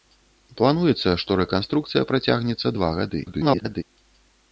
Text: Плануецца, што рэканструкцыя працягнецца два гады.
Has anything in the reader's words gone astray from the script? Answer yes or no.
yes